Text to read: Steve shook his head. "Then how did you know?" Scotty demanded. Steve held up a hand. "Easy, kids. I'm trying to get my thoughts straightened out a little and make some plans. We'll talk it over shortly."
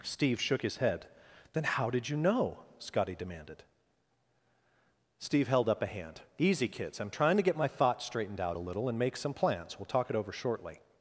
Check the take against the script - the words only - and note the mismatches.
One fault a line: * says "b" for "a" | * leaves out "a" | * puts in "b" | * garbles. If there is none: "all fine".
all fine